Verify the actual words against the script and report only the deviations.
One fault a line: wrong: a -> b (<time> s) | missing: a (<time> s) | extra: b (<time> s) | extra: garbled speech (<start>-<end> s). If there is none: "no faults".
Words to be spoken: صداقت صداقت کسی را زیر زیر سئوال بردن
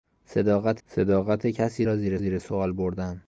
no faults